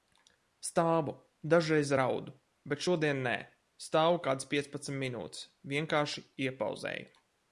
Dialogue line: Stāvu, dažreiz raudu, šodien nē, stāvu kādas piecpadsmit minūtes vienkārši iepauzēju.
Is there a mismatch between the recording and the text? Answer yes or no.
yes